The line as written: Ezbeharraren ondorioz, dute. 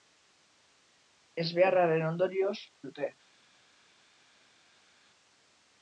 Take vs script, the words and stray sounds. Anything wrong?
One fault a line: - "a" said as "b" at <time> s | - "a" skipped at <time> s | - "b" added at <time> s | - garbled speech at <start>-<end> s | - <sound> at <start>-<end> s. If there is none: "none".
none